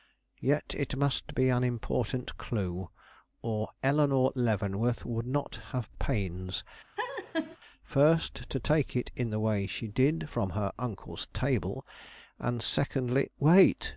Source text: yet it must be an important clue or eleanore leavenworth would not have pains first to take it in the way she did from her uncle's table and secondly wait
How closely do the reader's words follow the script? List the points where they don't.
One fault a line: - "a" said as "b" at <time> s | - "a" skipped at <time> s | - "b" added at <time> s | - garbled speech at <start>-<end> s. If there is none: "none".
none